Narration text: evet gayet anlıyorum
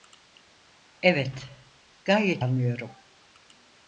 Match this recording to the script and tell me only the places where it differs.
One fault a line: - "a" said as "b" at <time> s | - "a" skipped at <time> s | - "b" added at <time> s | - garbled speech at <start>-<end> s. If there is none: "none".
none